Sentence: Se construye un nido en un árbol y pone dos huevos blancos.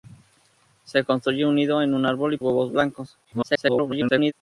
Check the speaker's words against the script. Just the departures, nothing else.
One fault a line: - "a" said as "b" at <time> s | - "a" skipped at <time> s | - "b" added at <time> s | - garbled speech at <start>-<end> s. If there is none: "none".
- "pone dos" skipped at 2.4 s
- garbled speech at 3.2-4.3 s